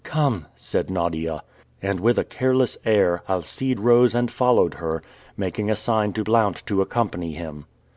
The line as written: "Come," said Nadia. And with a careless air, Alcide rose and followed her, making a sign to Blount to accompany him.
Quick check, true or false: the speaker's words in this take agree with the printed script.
true